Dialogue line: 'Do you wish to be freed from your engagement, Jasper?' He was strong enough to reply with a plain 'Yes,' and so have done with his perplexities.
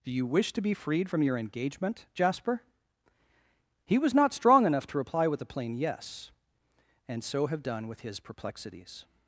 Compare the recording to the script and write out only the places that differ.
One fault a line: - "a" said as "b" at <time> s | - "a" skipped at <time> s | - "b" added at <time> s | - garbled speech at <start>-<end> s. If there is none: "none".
- "not" added at 4.1 s